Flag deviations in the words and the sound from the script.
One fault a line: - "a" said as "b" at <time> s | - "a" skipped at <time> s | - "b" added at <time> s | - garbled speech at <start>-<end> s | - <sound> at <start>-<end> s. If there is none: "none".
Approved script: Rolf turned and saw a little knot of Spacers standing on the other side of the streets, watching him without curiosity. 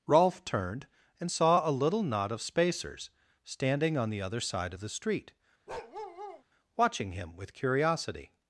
- "streets" said as "street" at 4.9 s
- bark at 5.7-6.4 s
- "without" said as "with" at 7.4 s